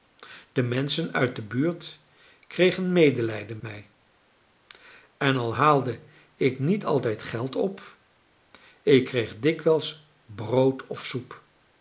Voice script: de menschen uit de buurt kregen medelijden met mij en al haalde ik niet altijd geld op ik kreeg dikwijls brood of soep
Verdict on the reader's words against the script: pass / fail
fail